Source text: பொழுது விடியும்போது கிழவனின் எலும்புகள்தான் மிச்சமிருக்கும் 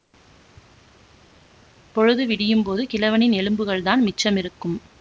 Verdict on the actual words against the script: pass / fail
pass